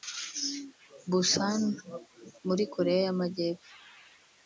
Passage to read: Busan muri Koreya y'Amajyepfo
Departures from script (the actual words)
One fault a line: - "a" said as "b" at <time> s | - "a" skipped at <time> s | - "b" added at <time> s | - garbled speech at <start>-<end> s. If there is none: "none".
none